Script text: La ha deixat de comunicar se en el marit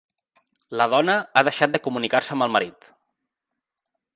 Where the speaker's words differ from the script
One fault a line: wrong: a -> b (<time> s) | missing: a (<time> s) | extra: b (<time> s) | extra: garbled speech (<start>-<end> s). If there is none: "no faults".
extra: dona (0.9 s)
wrong: en -> amb (2.4 s)